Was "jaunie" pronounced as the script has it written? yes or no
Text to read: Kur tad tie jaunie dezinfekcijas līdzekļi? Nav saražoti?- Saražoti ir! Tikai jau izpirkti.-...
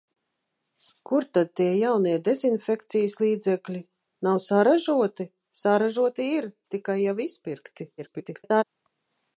yes